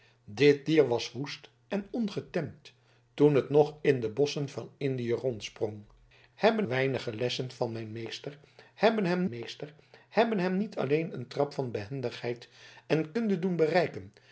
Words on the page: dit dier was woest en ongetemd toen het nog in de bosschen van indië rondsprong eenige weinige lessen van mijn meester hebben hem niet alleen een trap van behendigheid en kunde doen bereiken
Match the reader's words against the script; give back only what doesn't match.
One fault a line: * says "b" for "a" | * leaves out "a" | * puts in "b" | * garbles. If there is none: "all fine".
* says "hebben" for "eenige"
* puts in "meester hebben hem"